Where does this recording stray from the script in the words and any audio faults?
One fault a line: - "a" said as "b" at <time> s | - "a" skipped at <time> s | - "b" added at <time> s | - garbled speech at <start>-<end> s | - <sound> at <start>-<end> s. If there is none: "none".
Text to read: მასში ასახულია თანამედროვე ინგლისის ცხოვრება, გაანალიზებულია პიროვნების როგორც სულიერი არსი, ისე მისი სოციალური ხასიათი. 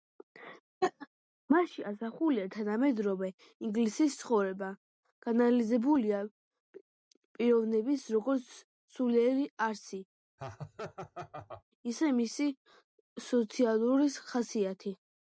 - laugh at 0.8-1.1 s
- laugh at 10.4-11.6 s